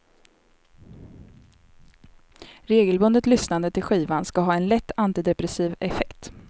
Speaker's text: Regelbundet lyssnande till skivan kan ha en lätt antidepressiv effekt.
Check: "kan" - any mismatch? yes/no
yes